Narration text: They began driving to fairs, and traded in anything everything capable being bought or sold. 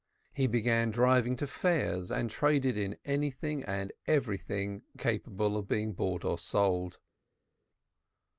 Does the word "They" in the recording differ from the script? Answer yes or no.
yes